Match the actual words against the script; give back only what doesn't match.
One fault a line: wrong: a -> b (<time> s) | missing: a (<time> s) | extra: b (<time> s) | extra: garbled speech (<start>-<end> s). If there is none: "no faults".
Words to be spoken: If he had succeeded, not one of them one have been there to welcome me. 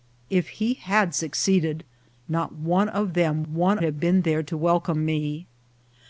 no faults